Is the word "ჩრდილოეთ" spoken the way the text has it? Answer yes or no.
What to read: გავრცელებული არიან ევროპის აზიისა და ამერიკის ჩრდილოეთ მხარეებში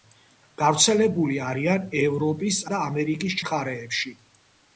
no